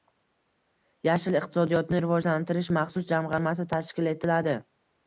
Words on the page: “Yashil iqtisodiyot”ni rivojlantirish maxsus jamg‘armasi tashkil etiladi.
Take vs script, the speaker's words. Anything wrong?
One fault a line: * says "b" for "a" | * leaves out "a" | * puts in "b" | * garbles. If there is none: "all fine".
all fine